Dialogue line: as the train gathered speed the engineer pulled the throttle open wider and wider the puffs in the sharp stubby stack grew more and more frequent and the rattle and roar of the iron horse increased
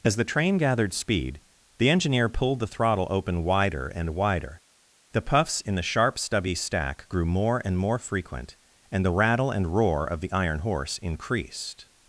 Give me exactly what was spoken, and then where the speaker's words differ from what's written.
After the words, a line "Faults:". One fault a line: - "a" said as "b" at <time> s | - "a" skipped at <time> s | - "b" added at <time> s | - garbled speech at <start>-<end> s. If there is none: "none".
as the train gathered speed the engineer pulled the throttle open wider and wider the puffs in the sharp stubby stack grew more and more frequent and the rattle and roar of the iron horse increased
Faults:
none